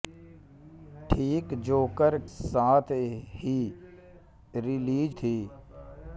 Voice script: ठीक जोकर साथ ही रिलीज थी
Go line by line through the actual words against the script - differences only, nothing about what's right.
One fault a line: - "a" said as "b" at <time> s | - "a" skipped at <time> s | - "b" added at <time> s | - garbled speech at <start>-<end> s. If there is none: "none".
none